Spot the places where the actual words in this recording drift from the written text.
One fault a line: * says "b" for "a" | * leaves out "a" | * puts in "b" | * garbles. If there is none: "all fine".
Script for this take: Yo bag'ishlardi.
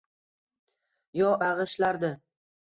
all fine